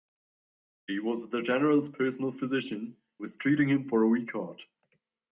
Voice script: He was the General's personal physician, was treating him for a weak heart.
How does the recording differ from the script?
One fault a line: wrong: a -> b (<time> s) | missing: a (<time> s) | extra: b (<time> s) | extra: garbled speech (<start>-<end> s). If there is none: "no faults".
no faults